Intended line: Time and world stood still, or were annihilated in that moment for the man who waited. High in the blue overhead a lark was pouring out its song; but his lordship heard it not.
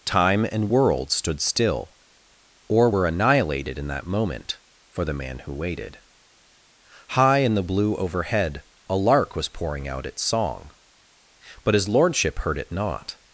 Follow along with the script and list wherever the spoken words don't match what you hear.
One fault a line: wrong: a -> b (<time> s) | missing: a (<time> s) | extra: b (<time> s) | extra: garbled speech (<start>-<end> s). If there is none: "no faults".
no faults